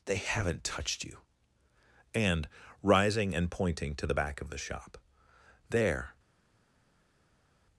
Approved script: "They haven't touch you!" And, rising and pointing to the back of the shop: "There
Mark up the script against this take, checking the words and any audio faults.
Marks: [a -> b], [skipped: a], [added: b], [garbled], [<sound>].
"They haven't [touch -> touched] you!" And, rising and pointing to the back of the shop: "There